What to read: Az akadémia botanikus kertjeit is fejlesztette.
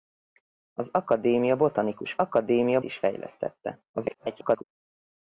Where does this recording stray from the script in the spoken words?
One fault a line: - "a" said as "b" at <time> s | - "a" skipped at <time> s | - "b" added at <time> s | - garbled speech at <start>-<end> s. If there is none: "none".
- "kertjeit" said as "akadémia" at 2.2 s
- garbled speech at 3.9-4.6 s